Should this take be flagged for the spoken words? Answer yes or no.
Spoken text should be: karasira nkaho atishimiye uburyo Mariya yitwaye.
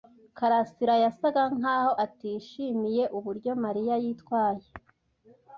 yes